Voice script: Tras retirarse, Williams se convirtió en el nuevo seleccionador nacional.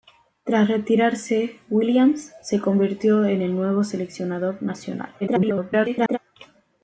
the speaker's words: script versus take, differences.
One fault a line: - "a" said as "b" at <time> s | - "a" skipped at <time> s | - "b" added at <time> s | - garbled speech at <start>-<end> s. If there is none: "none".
- garbled speech at 5.2-6.2 s